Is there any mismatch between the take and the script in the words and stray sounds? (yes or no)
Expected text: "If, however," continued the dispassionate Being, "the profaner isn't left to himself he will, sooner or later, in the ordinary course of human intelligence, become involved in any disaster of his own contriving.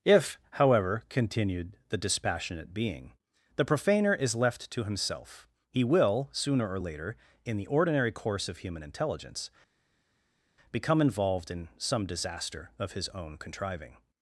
yes